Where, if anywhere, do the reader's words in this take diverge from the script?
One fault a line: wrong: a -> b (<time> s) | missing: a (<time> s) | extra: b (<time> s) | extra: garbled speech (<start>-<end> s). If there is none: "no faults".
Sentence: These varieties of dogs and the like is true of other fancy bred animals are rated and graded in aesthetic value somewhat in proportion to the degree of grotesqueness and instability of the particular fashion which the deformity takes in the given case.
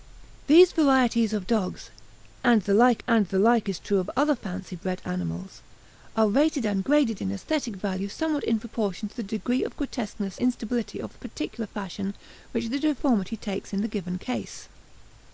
extra: and the like (3.1 s)
missing: and (10.4 s)